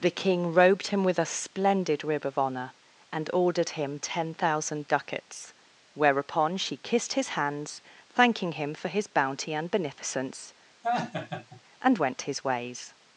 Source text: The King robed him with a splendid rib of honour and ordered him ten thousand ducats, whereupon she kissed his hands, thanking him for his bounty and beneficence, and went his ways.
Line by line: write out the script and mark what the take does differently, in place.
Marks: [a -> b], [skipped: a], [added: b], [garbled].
The King robed him with a splendid rib of honour and ordered him ten thousand ducats, whereupon she kissed his hands, thanking him for his bounty and beneficence, and went his ways.